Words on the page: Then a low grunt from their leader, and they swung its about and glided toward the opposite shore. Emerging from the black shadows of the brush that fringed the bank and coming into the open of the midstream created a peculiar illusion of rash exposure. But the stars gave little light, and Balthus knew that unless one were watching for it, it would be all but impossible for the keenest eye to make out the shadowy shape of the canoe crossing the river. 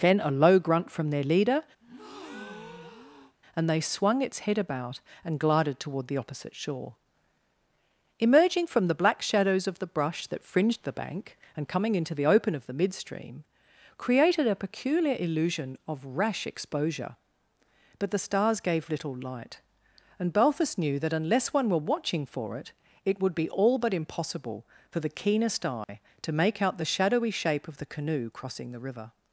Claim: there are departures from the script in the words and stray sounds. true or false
true